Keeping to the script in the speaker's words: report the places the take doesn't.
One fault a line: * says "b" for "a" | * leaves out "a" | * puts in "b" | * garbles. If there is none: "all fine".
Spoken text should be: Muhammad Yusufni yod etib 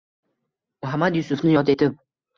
all fine